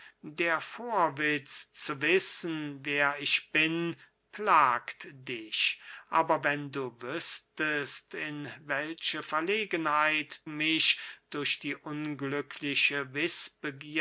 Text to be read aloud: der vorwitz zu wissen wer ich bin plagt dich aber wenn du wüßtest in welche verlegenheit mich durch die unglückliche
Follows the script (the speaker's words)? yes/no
yes